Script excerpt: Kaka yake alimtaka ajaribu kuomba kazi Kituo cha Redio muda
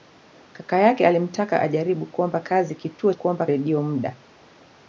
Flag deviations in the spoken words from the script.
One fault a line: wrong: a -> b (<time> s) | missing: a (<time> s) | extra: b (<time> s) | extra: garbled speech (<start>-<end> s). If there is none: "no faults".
wrong: cha -> kuomba (3.1 s)